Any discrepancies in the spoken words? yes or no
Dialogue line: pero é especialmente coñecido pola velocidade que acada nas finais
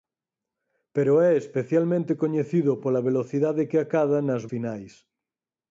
no